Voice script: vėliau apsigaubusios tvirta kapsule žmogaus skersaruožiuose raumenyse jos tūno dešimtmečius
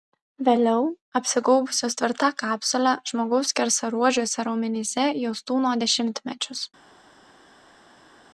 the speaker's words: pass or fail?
pass